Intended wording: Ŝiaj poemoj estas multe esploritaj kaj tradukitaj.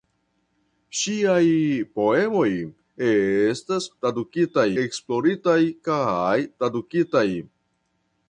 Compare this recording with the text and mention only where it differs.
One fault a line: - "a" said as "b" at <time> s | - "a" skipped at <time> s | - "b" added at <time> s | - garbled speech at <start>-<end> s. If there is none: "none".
- "multe" said as "tradukitaj" at 4.0 s